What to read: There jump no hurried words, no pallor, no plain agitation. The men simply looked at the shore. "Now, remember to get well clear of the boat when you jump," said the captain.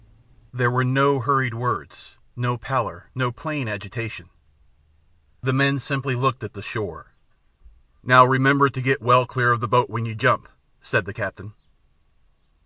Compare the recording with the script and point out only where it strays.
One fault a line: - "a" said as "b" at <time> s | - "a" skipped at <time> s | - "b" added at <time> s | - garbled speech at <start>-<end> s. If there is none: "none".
- "jump" said as "were" at 0.7 s